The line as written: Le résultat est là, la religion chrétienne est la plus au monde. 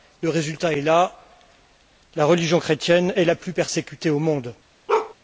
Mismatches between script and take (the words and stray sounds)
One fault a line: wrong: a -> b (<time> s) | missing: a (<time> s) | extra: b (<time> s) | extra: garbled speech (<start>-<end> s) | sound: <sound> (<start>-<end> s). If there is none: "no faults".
extra: persécutée (3.5 s)
sound: bark (4.9-5.1 s)